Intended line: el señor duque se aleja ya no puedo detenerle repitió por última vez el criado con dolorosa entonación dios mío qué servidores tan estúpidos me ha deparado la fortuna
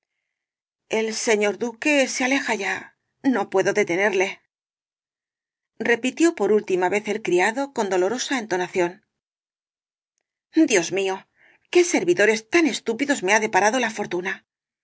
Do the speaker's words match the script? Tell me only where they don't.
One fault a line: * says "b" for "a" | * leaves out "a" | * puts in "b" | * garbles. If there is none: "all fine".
all fine